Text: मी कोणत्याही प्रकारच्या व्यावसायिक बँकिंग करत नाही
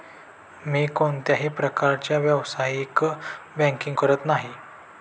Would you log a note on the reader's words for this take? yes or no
no